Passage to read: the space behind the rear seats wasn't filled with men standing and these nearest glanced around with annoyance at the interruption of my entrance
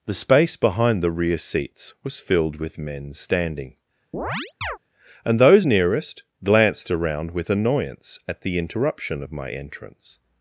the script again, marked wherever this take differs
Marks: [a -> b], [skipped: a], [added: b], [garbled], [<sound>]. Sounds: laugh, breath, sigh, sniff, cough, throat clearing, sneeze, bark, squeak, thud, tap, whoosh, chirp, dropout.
the space behind the rear seats [wasn't -> was] filled with men standing [chirp] and [these -> those] nearest glanced around with annoyance at the interruption of my entrance